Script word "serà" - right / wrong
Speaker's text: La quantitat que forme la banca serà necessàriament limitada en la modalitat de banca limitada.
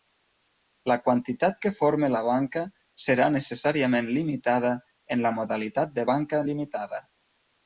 right